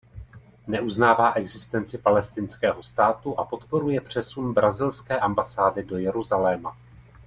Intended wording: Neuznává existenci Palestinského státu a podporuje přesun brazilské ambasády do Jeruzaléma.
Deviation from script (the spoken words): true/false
false